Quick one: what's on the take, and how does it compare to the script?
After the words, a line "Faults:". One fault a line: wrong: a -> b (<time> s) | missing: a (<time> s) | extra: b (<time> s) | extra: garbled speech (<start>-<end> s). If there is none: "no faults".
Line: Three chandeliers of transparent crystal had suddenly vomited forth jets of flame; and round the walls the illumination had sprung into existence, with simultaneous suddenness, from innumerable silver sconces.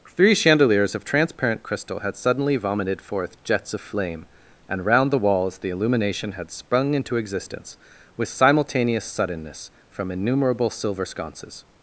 Three chandeliers of transparent crystal had suddenly vomited forth jets of flame; and round the walls the illumination had sprung into existence, with simultaneous suddenness, from innumerable silver sconces.
Faults:
no faults